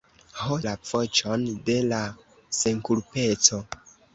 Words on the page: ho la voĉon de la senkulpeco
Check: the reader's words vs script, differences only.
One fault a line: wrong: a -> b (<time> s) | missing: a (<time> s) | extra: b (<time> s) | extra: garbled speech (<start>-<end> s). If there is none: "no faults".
no faults